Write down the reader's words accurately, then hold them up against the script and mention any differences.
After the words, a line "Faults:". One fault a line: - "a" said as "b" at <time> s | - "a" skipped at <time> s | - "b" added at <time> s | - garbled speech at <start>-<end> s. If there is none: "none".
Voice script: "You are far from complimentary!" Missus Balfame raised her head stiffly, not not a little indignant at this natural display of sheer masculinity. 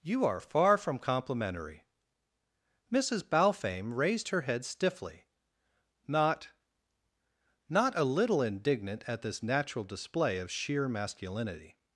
"You are far from complimentary!" Missus Balfame raised her head stiffly, not not a little indignant at this natural display of sheer masculinity.
Faults:
none